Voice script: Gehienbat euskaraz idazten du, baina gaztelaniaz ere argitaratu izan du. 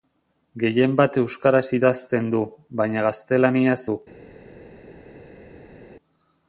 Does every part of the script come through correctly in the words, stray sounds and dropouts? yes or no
no